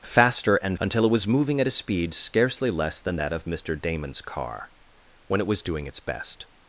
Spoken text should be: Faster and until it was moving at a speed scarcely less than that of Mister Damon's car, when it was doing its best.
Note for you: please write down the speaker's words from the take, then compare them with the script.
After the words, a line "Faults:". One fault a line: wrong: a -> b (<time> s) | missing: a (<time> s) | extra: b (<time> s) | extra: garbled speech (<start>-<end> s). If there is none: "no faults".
Faster and until it was moving at a speed scarcely less than that of Mister Damon's car, when it was doing its best.
Faults:
no faults